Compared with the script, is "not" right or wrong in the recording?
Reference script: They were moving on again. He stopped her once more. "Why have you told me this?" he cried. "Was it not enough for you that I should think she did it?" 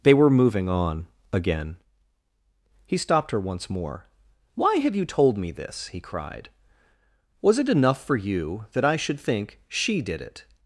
wrong